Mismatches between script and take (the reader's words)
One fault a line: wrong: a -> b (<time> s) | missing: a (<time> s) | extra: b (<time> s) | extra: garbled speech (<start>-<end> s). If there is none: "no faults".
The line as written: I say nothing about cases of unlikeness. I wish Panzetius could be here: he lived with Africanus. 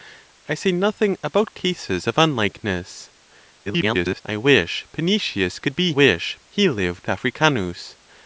extra: garbled speech (3.7-4.2 s)
wrong: here -> wish (5.9 s)
missing: with (7.1 s)